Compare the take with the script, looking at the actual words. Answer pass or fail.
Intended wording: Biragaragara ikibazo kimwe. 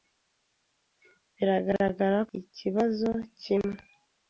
pass